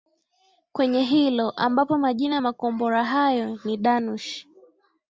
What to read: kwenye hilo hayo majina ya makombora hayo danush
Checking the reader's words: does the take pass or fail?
fail